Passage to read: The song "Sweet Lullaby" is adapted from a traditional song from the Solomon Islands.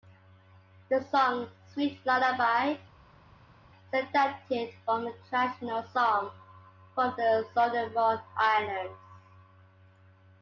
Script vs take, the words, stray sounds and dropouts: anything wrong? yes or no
no